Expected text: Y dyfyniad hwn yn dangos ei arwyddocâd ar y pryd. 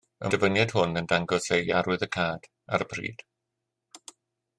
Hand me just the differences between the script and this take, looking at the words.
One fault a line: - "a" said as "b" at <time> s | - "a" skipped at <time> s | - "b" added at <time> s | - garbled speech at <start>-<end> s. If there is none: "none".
none